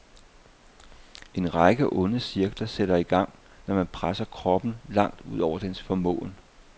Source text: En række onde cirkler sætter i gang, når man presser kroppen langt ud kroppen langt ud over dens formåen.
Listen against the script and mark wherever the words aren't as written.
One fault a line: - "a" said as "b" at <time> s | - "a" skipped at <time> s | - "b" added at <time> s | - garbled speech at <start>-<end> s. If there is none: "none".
- "kroppen langt ud" skipped at 5.4 s